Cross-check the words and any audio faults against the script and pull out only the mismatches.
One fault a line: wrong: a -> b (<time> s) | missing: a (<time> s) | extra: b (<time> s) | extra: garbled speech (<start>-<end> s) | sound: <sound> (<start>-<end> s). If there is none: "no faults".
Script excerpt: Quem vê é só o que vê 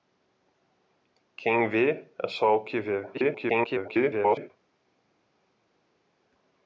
extra: garbled speech (3.1-4.5 s)